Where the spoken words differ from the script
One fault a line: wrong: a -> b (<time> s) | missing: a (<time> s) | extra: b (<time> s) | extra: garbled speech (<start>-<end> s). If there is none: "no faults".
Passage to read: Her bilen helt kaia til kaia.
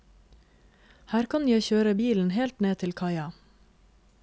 extra: kan jeg kjøre (1.3 s)
wrong: kaia -> ned (2.6 s)